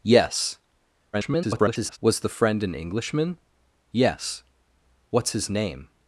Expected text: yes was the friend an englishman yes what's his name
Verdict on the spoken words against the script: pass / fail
fail